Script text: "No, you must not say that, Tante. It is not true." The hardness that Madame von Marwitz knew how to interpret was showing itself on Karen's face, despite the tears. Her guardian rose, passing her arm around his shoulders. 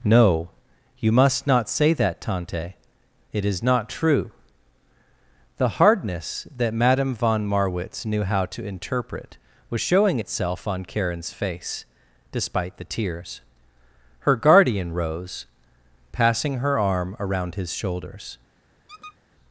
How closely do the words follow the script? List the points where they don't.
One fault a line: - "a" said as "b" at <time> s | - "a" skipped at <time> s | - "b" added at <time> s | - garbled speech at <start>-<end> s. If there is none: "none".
none